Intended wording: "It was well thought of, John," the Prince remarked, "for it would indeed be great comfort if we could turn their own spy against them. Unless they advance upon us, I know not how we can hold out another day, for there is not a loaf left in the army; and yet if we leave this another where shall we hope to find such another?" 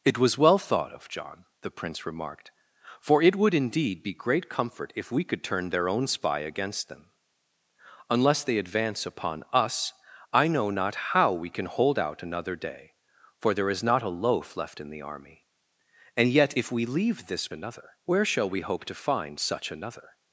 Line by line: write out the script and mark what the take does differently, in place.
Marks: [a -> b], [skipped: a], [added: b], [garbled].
"It was well thought of, John," the Prince remarked, "for it would indeed be great comfort if we could turn their own spy against them. Unless they advance upon us, I know not how we can hold out another day, for there is not a loaf left in the army; and yet if we leave this another where shall we hope to find such another?"